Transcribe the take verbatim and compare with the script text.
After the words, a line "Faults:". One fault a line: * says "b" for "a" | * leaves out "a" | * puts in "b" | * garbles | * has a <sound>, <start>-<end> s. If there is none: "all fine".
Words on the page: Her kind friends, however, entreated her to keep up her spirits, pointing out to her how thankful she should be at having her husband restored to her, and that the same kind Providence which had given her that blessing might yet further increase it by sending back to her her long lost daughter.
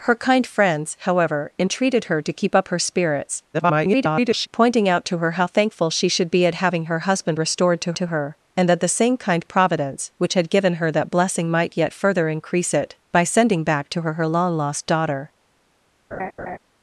Her kind friends, however, entreated her to keep up her spirits, [garbled] pointing out to her how thankful she should be at having her husband restored to to her, and that the same kind Providence which had given her that blessing might yet further increase it by sending back to her her long lost daughter.
Faults:
* garbles
* puts in "to"
* has a laugh, 16.1-16.6 s